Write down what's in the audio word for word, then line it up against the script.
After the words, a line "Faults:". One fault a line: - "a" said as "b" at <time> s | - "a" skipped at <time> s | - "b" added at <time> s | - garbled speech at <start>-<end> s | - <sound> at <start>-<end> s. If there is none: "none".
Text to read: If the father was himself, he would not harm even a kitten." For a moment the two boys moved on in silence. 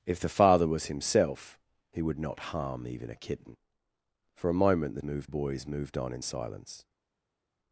If the father was himself, he would not harm even a kitten." For a moment the moved boys moved on in silence.
Faults:
- "two" said as "moved" at 5.0 s